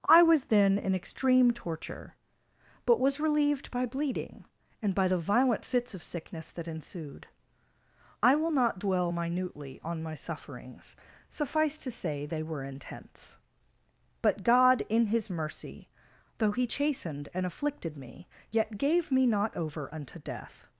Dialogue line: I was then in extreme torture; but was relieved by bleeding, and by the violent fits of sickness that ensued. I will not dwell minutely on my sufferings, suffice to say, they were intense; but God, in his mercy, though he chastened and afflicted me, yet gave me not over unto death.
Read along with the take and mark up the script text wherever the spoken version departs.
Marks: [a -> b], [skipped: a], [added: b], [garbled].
I was then in extreme torture; but was relieved by bleeding, and by the violent fits of sickness that ensued. I will not dwell minutely on my sufferings, suffice to say, they were intense; but God, in his mercy, though he chastened and afflicted me, yet gave me not over unto death.